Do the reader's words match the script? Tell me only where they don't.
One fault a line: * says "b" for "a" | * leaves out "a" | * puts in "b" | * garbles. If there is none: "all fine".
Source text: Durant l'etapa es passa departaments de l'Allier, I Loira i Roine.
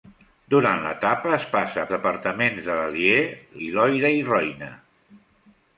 all fine